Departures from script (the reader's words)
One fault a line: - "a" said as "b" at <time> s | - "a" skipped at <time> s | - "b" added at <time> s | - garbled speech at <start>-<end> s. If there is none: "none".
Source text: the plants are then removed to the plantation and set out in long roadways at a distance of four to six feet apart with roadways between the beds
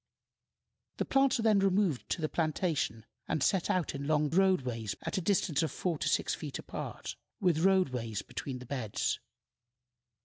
none